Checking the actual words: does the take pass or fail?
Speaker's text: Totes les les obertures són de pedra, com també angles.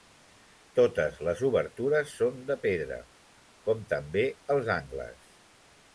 fail